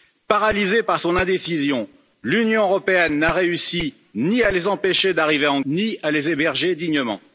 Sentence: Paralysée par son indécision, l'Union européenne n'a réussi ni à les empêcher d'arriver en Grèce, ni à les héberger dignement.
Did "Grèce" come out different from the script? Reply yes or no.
yes